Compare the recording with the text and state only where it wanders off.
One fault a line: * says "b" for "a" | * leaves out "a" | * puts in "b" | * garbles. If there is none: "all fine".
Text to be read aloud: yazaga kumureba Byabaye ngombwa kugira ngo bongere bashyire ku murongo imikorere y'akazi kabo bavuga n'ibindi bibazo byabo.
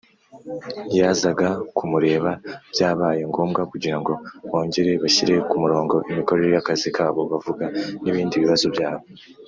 all fine